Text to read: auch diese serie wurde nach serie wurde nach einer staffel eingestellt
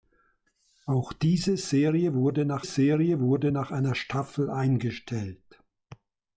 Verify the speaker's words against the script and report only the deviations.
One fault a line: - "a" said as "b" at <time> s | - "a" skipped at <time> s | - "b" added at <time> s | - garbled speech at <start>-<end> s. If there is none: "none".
none